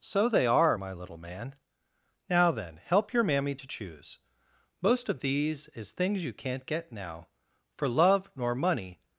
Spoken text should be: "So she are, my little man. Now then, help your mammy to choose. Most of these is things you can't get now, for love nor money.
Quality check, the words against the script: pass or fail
fail